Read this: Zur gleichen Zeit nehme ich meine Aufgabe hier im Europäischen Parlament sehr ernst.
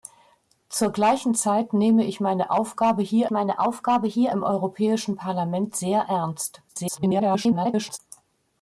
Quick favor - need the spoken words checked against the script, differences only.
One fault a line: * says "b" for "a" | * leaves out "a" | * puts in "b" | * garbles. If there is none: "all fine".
* puts in "meine Aufgabe hier"
* garbles